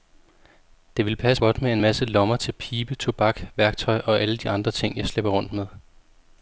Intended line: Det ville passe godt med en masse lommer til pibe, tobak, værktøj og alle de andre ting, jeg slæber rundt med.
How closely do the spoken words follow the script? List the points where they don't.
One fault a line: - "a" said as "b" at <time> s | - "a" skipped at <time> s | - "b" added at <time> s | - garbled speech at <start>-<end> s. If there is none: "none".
none